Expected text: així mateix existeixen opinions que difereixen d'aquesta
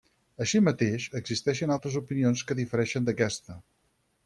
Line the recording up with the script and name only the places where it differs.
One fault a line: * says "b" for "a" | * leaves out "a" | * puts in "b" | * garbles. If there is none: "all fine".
* puts in "altres"